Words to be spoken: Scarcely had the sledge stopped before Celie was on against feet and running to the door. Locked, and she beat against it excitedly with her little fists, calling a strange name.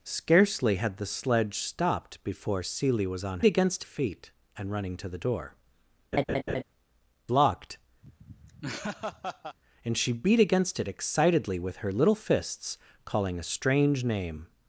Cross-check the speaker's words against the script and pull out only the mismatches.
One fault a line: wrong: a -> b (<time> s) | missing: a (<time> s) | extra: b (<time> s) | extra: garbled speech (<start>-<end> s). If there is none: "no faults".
no faults